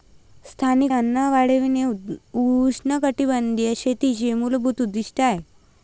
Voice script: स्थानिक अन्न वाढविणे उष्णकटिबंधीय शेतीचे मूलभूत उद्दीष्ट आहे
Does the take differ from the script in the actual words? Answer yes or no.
no